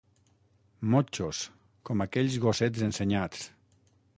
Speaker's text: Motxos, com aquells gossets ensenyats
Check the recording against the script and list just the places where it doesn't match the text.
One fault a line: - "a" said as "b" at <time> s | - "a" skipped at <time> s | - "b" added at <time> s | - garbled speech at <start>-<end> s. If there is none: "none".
none